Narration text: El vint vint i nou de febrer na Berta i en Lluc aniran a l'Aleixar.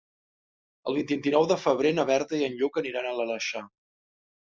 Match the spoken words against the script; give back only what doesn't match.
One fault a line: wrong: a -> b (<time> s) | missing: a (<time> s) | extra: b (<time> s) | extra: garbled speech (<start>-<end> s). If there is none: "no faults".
no faults